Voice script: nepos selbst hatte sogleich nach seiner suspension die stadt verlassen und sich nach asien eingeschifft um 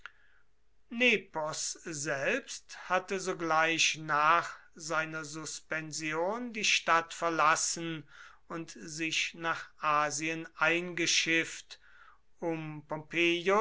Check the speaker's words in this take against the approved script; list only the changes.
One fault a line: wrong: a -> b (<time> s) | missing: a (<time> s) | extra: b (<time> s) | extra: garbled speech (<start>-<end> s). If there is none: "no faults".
no faults